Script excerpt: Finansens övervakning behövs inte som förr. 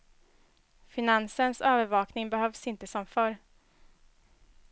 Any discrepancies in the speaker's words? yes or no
no